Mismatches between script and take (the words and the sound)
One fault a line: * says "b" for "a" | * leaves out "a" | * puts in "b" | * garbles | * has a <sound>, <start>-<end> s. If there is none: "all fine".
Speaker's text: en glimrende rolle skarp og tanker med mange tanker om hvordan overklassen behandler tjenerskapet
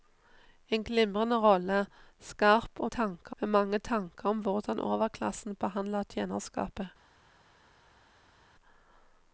all fine